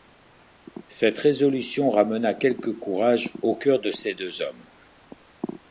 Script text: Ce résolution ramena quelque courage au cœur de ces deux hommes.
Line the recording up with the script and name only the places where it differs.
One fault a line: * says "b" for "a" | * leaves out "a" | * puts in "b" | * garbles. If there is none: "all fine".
* says "Cette" for "Ce"